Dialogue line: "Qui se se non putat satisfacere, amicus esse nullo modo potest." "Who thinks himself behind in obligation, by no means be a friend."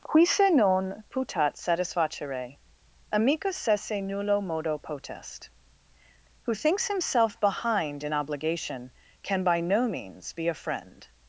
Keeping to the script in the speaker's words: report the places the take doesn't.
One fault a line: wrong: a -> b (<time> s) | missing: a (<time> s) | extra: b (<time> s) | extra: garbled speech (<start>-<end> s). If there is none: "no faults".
missing: se (0.5 s)
extra: can (9.2 s)